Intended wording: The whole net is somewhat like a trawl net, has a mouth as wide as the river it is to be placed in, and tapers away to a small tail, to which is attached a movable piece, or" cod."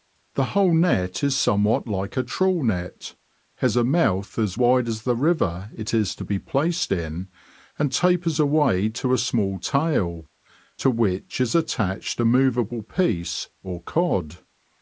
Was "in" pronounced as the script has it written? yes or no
yes